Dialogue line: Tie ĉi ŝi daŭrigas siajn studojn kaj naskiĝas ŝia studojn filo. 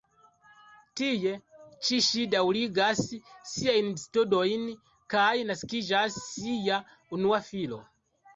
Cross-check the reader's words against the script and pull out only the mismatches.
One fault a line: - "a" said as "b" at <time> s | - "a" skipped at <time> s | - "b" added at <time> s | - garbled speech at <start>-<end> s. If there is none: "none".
- "studojn" said as "unua" at 7.2 s